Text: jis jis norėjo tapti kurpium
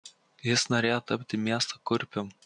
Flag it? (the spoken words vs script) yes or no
yes